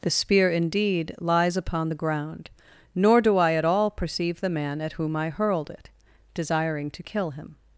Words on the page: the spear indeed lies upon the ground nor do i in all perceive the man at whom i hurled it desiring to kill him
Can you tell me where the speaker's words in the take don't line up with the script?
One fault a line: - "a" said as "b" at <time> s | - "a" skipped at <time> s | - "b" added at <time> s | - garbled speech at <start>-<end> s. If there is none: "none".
- "in" said as "at" at 3.5 s